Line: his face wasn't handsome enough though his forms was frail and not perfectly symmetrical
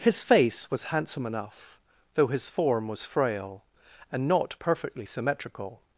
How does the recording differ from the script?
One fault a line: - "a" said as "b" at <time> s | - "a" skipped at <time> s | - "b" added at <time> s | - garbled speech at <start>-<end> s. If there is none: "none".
- "wasn't" said as "was" at 0.7 s
- "forms" said as "form" at 2.5 s